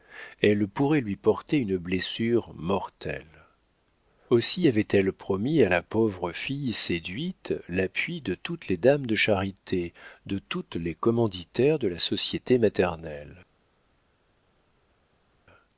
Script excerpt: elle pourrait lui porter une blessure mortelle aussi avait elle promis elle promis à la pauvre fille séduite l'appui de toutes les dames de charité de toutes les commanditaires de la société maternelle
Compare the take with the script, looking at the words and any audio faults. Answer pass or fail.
fail